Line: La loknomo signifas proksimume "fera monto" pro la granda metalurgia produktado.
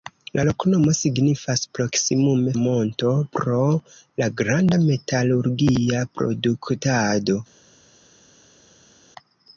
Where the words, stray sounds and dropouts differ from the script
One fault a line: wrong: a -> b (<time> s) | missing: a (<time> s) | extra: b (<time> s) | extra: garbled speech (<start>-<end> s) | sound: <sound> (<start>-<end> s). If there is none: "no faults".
missing: fera (2.5 s)